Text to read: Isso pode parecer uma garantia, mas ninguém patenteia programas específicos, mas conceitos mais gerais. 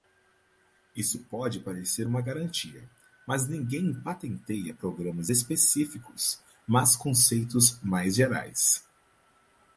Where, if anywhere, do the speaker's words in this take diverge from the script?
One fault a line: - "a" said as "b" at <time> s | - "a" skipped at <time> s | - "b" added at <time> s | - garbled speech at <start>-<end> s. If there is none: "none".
none